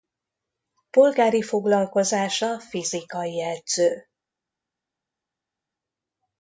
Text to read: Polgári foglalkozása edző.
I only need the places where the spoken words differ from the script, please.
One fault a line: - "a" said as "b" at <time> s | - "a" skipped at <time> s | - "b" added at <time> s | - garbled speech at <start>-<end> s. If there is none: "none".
- "fizikai" added at 2.6 s